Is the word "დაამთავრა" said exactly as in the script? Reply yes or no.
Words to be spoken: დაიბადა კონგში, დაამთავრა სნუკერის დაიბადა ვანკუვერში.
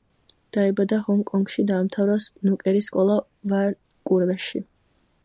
yes